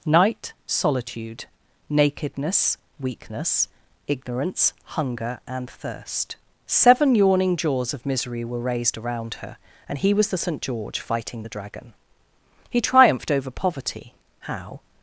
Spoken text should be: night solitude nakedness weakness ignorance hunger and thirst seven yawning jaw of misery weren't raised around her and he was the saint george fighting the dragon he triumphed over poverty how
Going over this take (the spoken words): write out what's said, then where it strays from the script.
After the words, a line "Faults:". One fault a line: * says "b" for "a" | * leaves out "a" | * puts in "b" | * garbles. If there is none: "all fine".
night solitude nakedness weakness ignorance hunger and thirst seven yawning jaws of misery were raised around her and he was the saint george fighting the dragon he triumphed over poverty how
Faults:
* says "jaws" for "jaw"
* says "were" for "weren't"